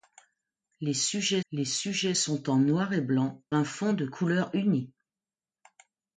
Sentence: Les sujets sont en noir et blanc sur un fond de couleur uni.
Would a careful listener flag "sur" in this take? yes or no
yes